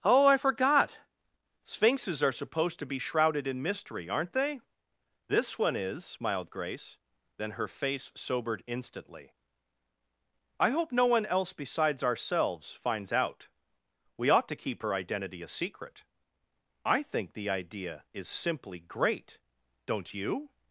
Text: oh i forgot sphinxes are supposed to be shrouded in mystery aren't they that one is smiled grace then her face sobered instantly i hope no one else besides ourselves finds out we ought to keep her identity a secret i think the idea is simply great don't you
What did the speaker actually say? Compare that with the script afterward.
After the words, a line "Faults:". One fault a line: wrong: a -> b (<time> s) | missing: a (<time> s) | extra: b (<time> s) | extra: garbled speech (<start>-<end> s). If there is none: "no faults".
oh i forgot sphinxes are supposed to be shrouded in mystery aren't they this one is smiled grace then her face sobered instantly i hope no one else besides ourselves finds out we ought to keep her identity a secret i think the idea is simply great don't you
Faults:
wrong: that -> this (5.3 s)